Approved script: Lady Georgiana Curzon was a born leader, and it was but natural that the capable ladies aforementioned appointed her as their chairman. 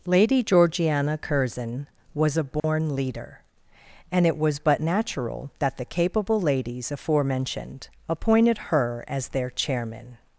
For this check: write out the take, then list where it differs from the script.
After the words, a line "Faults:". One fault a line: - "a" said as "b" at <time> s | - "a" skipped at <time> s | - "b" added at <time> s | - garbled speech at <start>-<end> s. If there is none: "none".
Lady Georgiana Curzon was a born leader, and it was but natural that the capable ladies aforementioned appointed her as their chairman.
Faults:
none